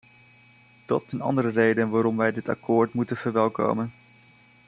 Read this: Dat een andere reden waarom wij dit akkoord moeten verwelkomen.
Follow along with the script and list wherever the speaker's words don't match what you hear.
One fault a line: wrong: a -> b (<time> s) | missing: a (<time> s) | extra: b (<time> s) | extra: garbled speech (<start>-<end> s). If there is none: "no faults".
no faults